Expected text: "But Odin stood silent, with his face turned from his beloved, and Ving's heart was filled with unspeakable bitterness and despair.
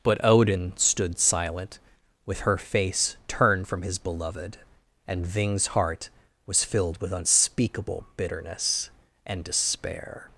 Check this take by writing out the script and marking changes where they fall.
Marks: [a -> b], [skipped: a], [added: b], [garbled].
"But Odin stood silent, with [his -> her] face turned from his beloved, and Ving's heart was filled with unspeakable bitterness and despair.